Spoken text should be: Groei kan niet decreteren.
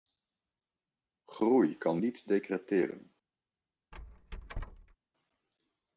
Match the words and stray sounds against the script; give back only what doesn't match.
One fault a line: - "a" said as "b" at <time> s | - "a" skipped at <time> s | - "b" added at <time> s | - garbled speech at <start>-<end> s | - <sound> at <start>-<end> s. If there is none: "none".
- squeak at 3.9-5.0 s